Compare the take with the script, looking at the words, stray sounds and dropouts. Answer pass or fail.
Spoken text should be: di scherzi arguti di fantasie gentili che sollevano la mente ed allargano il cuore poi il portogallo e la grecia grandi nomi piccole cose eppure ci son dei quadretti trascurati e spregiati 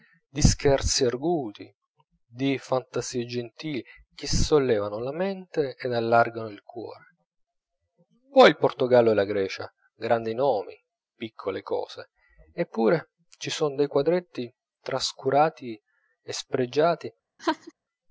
fail